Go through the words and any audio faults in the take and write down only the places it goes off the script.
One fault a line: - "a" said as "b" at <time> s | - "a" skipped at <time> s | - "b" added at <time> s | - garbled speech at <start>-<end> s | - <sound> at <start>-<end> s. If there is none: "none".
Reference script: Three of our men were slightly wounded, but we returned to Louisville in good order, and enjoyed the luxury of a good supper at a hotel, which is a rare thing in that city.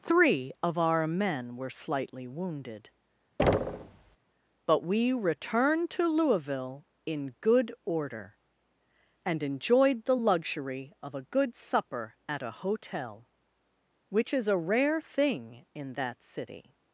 - thud at 3.4-4.2 s